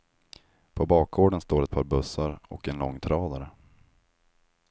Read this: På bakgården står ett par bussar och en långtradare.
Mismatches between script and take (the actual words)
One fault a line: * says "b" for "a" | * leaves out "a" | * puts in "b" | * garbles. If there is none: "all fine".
all fine